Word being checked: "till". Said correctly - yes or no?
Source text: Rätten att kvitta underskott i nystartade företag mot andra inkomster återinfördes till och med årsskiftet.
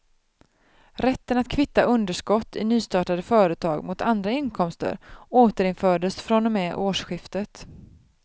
no